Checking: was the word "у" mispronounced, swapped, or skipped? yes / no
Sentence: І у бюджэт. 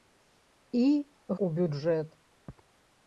no